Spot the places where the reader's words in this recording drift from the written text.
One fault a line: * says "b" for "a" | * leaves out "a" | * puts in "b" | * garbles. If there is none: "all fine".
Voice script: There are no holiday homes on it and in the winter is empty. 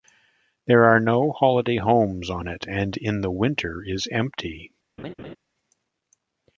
all fine